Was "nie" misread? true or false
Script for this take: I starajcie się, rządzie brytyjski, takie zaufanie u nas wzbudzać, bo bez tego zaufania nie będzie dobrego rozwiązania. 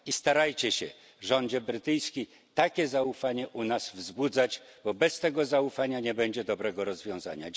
false